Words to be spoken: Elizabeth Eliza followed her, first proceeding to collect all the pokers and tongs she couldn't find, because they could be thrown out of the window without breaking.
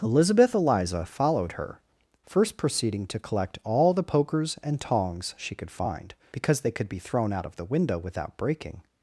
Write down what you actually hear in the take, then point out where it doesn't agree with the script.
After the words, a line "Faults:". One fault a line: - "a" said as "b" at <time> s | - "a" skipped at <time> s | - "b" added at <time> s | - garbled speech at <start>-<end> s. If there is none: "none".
Elizabeth Eliza followed her, first proceeding to collect all the pokers and tongs she could find, because they could be thrown out of the window without breaking.
Faults:
- "couldn't" said as "could" at 5.5 s